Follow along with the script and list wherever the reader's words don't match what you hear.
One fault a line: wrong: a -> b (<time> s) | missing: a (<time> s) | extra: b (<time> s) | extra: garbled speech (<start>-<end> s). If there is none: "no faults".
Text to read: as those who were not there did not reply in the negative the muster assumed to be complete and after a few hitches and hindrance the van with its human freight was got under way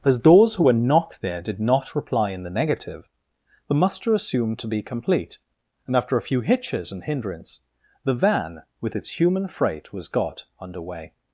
no faults